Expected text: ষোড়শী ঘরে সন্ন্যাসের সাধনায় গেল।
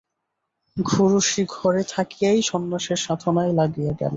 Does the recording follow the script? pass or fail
fail